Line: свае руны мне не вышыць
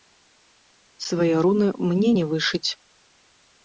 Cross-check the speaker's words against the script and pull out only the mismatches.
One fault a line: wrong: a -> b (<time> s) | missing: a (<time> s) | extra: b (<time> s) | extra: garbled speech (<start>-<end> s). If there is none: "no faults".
no faults